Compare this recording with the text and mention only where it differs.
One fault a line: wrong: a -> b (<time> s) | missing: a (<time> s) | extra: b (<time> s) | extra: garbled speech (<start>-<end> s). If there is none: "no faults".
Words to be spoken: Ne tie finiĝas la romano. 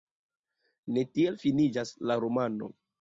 wrong: tie -> tiel (1.2 s)